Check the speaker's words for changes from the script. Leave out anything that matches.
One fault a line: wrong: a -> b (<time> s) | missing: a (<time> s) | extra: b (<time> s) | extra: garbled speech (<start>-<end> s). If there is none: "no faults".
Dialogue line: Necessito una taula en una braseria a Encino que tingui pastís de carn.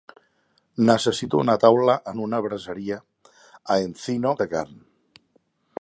missing: que tingui pastís (4.3 s)